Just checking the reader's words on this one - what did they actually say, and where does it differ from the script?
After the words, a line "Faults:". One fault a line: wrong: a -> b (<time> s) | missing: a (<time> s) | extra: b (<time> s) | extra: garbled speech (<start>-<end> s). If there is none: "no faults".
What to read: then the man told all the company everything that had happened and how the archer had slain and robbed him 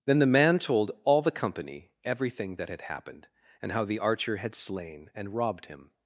then the man told all the company everything that had happened and how the archer had slain and robbed him
Faults:
no faults